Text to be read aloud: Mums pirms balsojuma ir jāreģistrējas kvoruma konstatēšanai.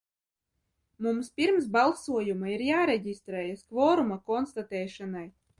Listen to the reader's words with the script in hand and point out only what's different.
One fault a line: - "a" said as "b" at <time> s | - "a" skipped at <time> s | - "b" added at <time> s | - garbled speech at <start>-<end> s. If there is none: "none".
none